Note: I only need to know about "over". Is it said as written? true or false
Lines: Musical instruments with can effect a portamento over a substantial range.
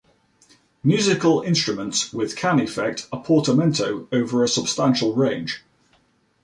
true